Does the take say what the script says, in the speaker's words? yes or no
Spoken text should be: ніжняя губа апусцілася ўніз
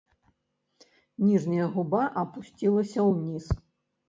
yes